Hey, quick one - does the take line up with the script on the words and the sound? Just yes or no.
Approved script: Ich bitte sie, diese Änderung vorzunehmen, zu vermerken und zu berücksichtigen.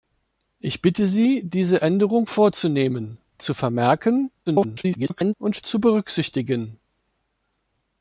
no